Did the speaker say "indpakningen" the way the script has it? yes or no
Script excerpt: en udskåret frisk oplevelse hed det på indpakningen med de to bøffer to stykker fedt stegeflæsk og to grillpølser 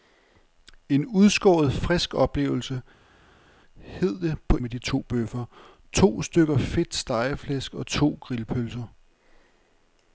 no